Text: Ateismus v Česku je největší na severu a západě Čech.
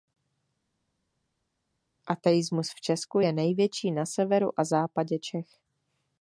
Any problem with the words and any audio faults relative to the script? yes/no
no